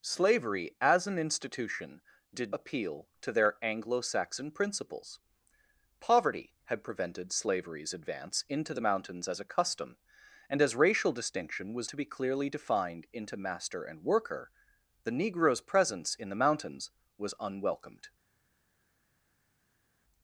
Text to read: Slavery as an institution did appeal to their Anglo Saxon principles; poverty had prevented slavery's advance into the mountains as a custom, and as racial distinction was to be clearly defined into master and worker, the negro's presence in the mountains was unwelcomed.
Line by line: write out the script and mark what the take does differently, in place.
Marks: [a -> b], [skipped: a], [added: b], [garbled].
Slavery as an institution did appeal to their Anglo Saxon principles; poverty had prevented slavery's advance into the mountains as a custom, and as racial distinction was to be clearly defined into master and worker, the negro's presence in the mountains was unwelcomed.